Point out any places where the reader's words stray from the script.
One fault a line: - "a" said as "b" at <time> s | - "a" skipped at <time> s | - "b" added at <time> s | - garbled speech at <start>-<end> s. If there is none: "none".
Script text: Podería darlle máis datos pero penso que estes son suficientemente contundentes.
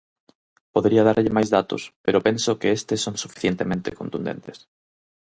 none